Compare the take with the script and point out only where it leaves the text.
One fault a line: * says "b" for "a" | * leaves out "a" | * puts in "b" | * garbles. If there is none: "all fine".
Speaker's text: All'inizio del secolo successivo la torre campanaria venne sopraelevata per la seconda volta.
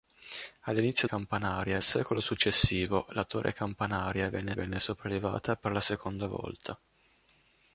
* says "campanaria" for "del"
* puts in "venne"